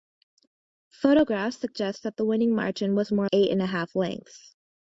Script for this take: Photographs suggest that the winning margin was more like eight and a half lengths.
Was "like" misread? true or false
true